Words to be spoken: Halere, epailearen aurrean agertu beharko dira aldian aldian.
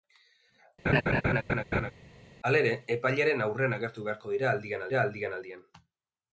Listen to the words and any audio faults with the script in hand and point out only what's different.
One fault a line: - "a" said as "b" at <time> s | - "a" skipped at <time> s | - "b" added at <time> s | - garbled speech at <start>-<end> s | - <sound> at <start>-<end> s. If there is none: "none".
- laugh at 0.9-1.9 s
- "dira aldian" added at 4.9 s